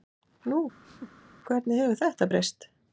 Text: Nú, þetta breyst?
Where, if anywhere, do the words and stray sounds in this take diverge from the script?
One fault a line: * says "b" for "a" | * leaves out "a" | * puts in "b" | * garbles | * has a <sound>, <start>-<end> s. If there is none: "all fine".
* has a laugh, 0.8-1.3 s
* puts in "hvernig hefur"